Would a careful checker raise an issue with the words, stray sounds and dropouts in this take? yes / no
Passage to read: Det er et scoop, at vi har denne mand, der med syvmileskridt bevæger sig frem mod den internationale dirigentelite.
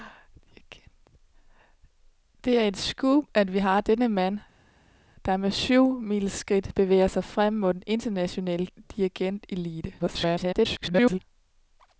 yes